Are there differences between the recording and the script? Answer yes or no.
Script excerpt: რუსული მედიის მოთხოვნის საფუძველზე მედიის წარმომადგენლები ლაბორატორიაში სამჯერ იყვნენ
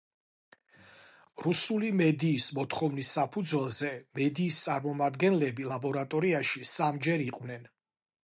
no